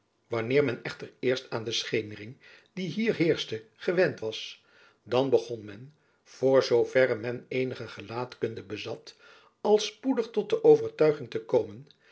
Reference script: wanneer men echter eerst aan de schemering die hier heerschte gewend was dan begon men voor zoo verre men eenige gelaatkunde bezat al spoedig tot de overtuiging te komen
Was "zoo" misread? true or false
false